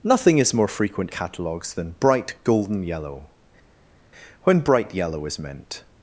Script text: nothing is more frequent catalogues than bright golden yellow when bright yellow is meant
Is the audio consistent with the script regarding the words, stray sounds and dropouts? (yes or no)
yes